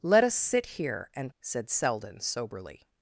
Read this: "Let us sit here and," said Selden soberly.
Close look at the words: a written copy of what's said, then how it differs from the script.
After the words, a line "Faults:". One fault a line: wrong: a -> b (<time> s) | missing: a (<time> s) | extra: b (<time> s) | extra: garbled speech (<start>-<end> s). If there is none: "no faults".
"Let us sit here and," said Selden soberly.
Faults:
no faults